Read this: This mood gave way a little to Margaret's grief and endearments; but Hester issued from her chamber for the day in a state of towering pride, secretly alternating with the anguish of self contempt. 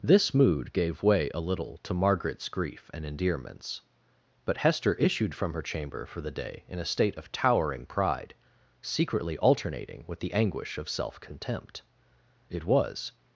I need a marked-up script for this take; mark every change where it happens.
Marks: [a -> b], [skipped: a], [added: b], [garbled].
This mood gave way a little to Margaret's grief and endearments; but Hester issued from her chamber for the day in a state of towering pride, secretly alternating with the anguish of self contempt. [added: It was]